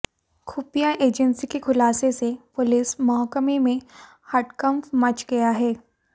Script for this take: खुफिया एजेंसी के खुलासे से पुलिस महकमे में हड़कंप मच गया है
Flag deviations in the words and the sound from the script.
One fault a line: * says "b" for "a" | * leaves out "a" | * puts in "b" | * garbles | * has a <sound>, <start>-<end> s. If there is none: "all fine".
all fine